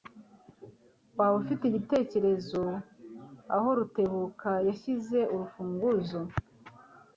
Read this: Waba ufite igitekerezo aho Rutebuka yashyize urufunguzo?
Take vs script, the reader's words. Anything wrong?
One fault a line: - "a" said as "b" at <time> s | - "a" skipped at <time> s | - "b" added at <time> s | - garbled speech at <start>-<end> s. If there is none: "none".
none